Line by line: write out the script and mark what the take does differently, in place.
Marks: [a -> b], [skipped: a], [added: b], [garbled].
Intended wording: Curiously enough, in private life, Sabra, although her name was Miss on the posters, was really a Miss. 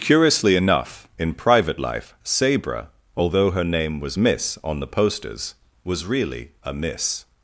Curiously enough, in private life, Sabra, although her name was Miss on the posters, was really a Miss.